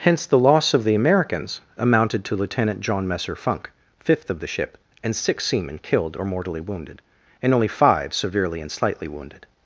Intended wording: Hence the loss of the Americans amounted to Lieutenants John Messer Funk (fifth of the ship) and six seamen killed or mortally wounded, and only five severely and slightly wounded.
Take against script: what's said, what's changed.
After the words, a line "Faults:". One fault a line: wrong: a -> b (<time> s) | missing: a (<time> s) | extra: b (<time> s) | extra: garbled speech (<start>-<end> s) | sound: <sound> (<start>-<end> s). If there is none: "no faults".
Hence the loss of the Americans amounted to Lieutenant John Messer Funk (fifth of the ship) and six seamen killed or mortally wounded, and only five severely and slightly wounded.
Faults:
wrong: Lieutenants -> Lieutenant (2.4 s)